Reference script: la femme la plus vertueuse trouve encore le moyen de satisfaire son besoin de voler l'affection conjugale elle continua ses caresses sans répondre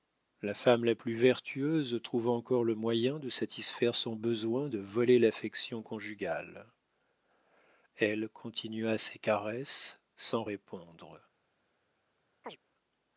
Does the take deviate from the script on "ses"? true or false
false